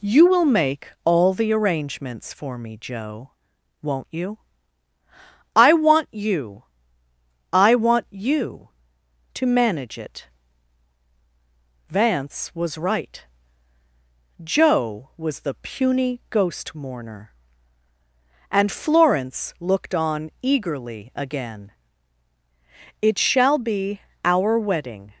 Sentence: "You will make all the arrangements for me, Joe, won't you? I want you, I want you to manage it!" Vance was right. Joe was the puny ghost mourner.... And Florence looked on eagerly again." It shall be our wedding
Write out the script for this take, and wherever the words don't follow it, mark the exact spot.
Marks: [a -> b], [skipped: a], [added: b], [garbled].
"You will make all the arrangements for me, Joe, won't you? I want you, I want you to manage it!" Vance was right. Joe was the puny ghost mourner.... And Florence looked on eagerly again." It shall be our wedding